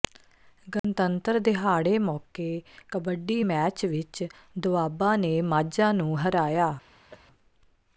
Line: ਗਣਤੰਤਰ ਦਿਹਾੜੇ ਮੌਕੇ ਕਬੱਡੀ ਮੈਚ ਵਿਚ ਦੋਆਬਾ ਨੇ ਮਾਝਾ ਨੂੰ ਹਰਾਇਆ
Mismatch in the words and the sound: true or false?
true